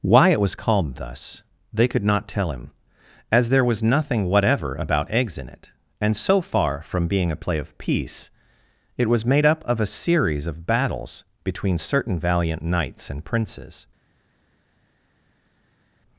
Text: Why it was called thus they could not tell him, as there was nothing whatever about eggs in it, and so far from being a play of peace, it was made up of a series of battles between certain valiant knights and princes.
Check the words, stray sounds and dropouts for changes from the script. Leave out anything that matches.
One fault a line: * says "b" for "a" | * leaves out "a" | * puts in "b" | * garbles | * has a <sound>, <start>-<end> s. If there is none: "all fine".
all fine